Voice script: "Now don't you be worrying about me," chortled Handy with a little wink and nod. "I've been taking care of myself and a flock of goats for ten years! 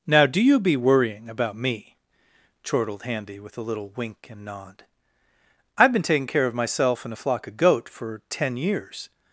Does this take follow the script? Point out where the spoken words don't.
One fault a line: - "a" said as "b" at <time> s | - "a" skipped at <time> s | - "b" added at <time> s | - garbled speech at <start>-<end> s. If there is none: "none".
- "don't" said as "do" at 0.2 s
- "goats" said as "goat" at 7.6 s